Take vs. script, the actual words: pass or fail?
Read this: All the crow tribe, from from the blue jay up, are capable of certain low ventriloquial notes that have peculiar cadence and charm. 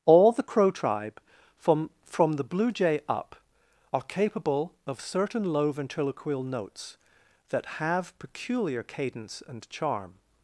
pass